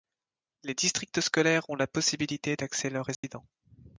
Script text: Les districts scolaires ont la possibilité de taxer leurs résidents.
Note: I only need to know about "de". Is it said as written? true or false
false